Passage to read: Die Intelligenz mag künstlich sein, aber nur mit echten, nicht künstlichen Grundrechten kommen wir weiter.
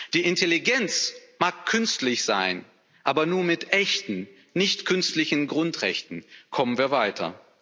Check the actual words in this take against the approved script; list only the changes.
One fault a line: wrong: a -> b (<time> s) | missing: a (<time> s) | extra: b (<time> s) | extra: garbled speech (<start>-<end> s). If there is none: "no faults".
no faults